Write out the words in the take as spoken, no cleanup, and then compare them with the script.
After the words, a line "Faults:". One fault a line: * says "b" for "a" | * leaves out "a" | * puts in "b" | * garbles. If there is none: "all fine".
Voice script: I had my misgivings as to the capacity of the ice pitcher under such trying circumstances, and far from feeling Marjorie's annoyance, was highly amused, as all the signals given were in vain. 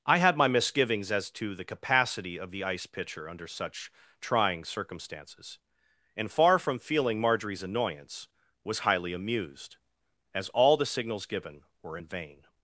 I had my misgivings as to the capacity of the ice pitcher under such trying circumstances, and far from feeling Marjorie's annoyance, was highly amused, as all the signals given were in vain.
Faults:
all fine